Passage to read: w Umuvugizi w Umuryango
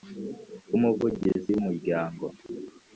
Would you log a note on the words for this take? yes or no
no